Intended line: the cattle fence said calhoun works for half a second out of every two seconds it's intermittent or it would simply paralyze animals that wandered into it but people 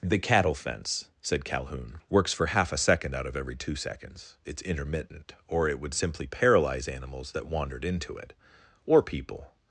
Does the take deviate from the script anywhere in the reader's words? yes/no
yes